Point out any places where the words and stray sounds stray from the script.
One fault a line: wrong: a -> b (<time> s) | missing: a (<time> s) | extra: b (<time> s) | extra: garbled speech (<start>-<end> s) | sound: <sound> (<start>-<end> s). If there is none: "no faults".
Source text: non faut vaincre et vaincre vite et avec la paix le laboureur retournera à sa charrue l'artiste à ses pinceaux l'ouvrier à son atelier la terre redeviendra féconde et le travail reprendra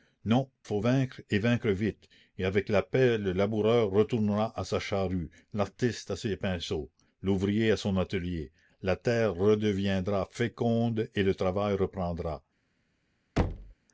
sound: thud (13.4-13.7 s)